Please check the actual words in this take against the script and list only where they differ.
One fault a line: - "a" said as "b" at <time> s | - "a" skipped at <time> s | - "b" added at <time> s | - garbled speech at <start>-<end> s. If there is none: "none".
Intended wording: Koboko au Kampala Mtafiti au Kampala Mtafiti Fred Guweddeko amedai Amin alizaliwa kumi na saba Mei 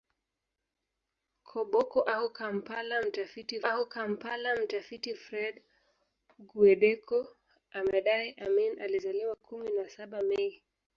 none